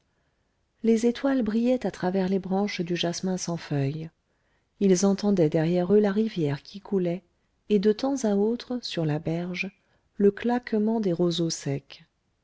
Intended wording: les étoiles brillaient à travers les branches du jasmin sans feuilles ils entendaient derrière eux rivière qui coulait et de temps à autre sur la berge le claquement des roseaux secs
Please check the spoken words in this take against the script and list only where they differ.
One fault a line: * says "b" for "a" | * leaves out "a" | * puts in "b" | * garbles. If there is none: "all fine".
* puts in "la"